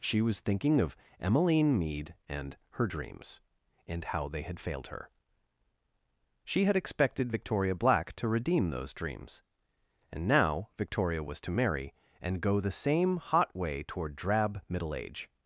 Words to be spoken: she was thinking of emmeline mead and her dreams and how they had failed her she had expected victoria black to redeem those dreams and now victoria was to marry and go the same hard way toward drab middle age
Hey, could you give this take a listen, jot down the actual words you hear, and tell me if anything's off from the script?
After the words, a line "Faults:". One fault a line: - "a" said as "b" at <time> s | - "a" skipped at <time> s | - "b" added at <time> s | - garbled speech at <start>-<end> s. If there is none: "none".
she was thinking of emmeline mead and her dreams and how they had failed her she had expected victoria black to redeem those dreams and now victoria was to marry and go the same hot way toward drab middle age
Faults:
- "hard" said as "hot" at 13.2 s